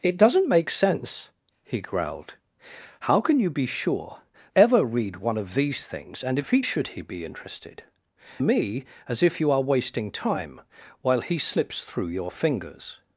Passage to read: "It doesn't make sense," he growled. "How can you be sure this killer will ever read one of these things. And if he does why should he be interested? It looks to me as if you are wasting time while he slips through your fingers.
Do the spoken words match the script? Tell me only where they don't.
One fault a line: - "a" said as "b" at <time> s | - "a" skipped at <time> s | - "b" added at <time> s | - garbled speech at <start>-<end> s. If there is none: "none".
- "this killer will" skipped at 4.2 s
- "does why" skipped at 6.6 s
- "It looks to" skipped at 7.8 s